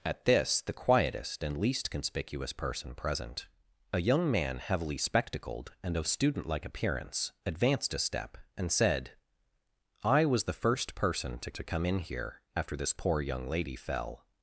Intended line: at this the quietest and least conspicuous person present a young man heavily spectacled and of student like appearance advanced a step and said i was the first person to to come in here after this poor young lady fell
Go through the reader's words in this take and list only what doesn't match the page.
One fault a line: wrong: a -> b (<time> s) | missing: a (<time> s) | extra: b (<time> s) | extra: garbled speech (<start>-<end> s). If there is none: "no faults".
no faults